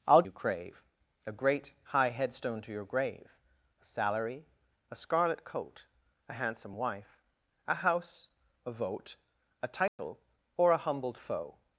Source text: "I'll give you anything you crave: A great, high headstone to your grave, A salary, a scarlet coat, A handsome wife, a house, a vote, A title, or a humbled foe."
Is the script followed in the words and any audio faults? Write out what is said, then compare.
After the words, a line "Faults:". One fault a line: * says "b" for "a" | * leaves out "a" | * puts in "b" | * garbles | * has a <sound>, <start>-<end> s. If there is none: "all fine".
"I'll you crave: A great, high headstone to your grave, A salary, a scarlet coat, A handsome wife, a house, a vote, A title, or a humbled foe."
Faults:
* leaves out "give you anything"
* has a dropout, 9.9-10.0 s